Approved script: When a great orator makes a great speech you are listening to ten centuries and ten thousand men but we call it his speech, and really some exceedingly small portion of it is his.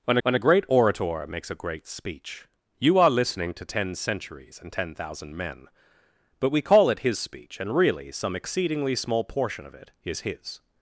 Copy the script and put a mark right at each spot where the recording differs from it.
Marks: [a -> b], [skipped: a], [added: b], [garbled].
When [added: when] a great orator makes a great speech you are listening to ten centuries and ten thousand men but we call it his speech, and really some exceedingly small portion of it is his.